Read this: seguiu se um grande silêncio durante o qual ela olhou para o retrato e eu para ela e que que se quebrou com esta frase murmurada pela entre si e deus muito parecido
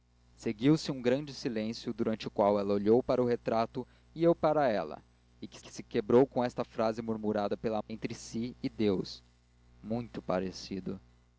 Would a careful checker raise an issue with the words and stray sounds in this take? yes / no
no